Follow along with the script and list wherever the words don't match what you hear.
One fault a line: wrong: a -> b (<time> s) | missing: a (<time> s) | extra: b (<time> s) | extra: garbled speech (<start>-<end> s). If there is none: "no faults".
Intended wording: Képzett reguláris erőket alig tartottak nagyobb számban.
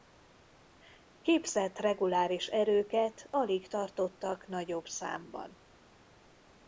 no faults